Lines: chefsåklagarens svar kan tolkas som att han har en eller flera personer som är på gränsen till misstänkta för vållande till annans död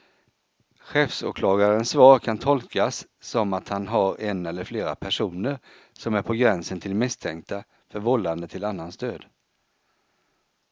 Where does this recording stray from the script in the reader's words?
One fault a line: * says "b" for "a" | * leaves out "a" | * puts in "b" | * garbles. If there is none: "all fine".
all fine